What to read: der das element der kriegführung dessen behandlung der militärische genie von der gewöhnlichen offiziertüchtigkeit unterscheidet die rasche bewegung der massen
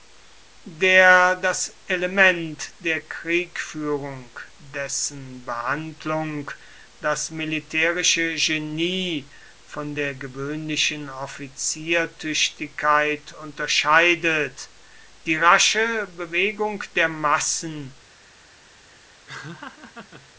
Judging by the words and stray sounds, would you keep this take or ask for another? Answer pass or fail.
fail